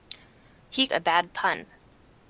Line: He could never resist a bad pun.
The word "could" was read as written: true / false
false